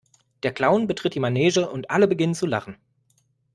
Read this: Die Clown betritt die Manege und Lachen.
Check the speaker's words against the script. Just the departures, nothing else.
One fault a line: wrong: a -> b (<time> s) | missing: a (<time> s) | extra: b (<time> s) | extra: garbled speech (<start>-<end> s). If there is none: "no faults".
wrong: Die -> Der (0.4 s)
extra: alle beginnen zu (1.9 s)